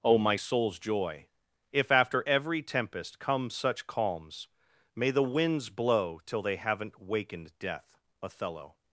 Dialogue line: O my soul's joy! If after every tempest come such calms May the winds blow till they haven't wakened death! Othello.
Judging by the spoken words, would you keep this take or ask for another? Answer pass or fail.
pass